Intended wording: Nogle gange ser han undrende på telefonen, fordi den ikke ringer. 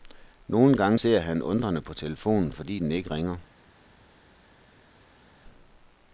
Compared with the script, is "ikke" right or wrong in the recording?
right